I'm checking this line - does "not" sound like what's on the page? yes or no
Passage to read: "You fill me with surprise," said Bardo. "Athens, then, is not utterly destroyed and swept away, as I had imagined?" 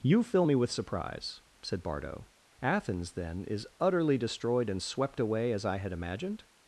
no